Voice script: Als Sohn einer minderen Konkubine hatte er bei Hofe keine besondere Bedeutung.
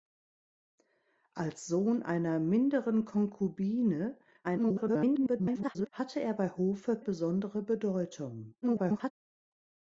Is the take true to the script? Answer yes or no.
no